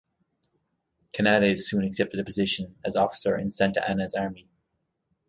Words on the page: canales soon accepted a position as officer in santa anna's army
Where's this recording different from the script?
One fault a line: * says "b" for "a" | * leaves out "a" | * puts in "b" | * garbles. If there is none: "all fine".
all fine